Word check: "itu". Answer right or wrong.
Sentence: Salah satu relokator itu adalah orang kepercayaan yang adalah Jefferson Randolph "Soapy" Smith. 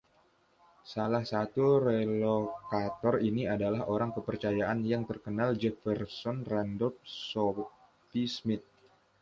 wrong